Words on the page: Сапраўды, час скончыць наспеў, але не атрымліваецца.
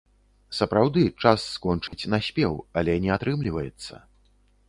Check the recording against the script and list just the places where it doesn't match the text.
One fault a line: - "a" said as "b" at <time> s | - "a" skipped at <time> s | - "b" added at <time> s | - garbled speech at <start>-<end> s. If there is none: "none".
none